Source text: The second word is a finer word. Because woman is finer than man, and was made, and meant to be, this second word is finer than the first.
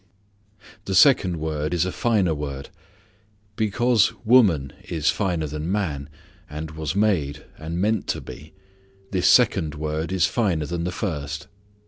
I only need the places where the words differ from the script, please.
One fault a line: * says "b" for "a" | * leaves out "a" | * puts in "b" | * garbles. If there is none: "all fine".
all fine